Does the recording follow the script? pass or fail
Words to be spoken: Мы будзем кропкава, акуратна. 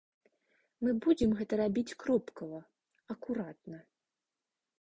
fail